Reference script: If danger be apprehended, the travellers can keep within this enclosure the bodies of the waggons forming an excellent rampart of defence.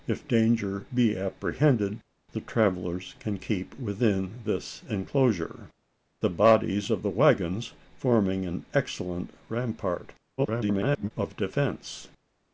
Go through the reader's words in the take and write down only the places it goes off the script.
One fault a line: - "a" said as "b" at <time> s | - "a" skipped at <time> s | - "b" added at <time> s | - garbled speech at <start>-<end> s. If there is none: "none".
- garbled speech at 10.4-11.1 s